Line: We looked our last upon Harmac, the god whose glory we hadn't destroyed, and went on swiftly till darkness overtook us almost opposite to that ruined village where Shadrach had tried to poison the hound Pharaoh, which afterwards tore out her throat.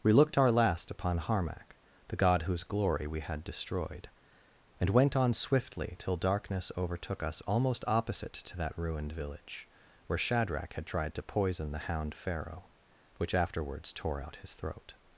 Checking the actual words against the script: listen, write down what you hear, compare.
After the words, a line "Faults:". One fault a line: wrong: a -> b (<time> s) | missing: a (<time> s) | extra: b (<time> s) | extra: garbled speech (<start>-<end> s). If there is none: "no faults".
We looked our last upon Harmac, the god whose glory we had destroyed, and went on swiftly till darkness overtook us almost opposite to that ruined village where Shadrach had tried to poison the hound Pharaoh, which afterwards tore out his throat.
Faults:
wrong: hadn't -> had (3.2 s)
wrong: her -> his (14.4 s)